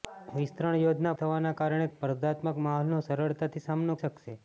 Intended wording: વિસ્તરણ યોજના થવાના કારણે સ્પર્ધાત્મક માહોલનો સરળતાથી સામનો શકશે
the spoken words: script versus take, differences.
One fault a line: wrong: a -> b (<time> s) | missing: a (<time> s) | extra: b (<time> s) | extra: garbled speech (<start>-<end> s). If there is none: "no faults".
no faults